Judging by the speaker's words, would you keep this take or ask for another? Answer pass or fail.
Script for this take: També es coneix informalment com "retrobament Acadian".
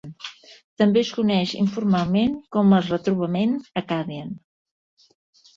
fail